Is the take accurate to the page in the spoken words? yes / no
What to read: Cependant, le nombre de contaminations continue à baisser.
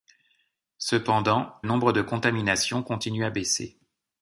no